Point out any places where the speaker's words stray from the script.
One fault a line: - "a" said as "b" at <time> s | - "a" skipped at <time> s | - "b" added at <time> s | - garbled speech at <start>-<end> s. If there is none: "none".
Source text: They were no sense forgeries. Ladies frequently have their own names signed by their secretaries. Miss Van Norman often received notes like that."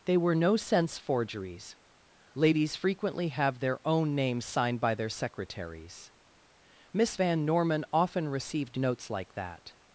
none